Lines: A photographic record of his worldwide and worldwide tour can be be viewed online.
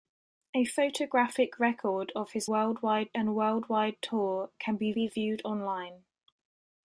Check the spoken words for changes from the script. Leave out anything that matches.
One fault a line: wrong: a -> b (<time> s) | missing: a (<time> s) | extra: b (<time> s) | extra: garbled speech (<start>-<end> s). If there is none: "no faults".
no faults